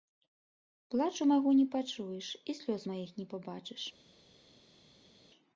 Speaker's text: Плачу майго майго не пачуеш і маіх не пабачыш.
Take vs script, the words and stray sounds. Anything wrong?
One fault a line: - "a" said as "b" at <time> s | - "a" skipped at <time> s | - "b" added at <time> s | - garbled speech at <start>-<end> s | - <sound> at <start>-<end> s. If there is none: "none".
- "майго" skipped at 1.5 s
- "слёз" added at 2.6 s